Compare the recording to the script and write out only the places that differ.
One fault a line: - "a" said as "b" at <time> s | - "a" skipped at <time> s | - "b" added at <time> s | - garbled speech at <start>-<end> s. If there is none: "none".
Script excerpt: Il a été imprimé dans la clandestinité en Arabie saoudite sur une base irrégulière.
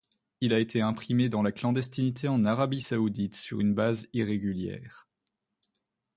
none